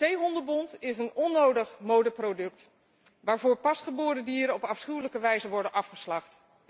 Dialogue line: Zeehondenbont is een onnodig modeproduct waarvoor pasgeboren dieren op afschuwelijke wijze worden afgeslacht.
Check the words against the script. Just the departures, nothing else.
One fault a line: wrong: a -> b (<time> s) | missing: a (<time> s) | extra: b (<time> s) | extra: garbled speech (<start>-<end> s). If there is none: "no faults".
no faults